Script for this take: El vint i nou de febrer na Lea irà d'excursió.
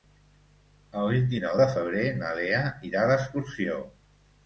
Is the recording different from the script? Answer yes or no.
no